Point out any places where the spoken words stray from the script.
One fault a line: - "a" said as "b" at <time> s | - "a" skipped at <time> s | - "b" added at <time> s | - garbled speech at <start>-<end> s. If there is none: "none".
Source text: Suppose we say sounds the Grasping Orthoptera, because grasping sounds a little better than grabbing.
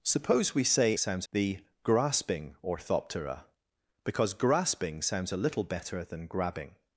none